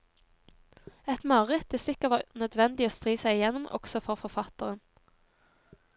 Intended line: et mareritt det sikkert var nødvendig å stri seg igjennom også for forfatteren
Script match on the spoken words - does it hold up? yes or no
yes